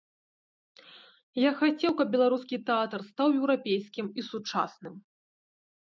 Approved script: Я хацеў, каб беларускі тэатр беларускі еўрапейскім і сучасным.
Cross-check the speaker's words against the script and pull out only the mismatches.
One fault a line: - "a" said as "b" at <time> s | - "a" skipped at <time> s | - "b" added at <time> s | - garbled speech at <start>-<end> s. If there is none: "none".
- "беларускі" said as "стаў" at 3.1 s